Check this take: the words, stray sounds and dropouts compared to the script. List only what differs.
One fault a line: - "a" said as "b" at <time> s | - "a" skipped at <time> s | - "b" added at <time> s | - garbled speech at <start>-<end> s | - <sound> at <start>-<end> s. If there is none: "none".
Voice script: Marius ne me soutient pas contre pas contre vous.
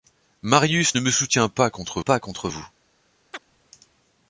- chirp at 3.3-3.4 s